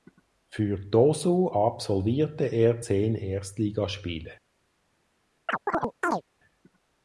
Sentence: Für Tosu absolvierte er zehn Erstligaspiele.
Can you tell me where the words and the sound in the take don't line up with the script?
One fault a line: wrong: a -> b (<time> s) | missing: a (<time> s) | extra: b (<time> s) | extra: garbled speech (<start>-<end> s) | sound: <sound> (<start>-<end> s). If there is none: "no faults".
sound: chirp (5.5-6.2 s)